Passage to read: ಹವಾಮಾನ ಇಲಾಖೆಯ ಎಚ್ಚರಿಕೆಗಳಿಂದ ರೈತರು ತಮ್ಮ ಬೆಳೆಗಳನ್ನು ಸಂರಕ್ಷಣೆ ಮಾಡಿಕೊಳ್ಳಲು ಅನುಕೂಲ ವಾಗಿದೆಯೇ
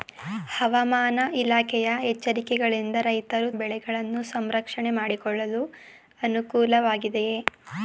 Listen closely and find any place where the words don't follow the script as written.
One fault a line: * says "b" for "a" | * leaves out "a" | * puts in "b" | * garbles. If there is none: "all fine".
* leaves out "ತಮ್ಮ"